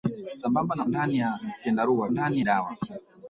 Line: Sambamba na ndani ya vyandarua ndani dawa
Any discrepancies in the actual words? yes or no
no